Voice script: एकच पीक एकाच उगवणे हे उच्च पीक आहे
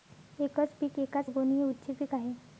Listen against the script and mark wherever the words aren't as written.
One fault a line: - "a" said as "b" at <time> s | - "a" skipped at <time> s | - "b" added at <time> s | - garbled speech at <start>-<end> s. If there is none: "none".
none